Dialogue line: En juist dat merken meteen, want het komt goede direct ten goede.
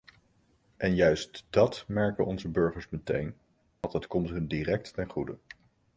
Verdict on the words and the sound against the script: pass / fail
fail